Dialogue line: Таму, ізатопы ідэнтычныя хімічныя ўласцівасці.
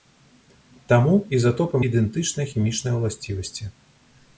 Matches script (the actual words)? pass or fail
pass